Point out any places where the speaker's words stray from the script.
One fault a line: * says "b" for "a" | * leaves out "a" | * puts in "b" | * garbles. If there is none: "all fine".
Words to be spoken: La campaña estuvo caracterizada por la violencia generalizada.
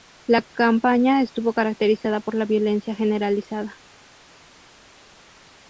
all fine